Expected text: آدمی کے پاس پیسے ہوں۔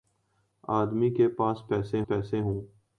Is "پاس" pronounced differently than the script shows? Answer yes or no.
no